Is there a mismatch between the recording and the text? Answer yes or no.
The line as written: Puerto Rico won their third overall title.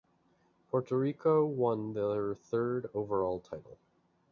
no